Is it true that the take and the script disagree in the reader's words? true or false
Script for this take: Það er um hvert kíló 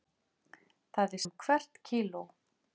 false